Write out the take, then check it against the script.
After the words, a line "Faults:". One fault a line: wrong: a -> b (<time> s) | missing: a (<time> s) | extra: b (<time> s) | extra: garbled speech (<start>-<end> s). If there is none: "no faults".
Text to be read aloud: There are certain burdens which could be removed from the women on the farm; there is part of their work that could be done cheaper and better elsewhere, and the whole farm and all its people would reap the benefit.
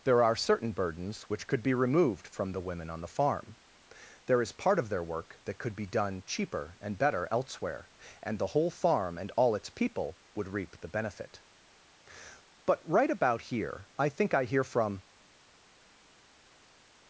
There are certain burdens which could be removed from the women on the farm; there is part of their work that could be done cheaper and better elsewhere, and the whole farm and all its people would reap the benefit. But right about here I think I hear from
Faults:
extra: But right about here I think I hear from (12.7 s)